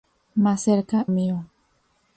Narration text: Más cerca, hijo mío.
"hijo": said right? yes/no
no